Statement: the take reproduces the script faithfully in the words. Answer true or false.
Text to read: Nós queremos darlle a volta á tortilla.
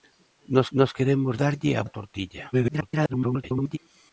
false